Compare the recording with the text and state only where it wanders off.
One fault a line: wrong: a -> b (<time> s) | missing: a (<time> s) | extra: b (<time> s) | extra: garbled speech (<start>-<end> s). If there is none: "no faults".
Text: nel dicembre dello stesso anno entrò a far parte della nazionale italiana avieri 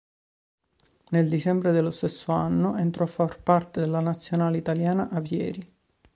no faults